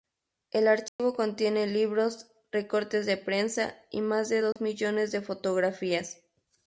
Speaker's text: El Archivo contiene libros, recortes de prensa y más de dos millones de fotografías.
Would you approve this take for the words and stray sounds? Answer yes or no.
no